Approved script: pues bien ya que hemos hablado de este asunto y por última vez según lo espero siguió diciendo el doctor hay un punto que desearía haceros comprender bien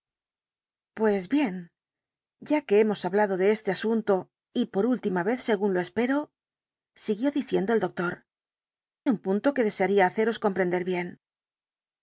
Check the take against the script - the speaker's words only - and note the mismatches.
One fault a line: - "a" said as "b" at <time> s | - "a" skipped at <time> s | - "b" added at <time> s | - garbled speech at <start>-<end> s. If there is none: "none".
- "hay" skipped at 8.2 s